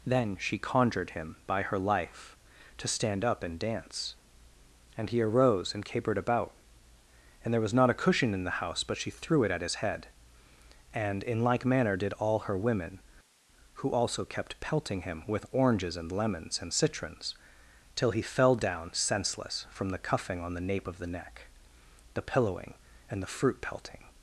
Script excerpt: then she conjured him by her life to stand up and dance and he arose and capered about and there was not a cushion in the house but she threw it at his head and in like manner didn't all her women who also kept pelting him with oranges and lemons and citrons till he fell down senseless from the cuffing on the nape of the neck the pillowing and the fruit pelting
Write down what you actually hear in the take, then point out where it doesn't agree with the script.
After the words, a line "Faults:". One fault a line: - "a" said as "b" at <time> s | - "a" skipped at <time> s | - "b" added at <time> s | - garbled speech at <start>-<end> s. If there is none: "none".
then she conjured him by her life to stand up and dance and he arose and capered about and there was not a cushion in the house but she threw it at his head and in like manner did all her women who also kept pelting him with oranges and lemons and citrons till he fell down senseless from the cuffing on the nape of the neck the pillowing and the fruit pelting
Faults:
- "didn't" said as "did" at 12.0 s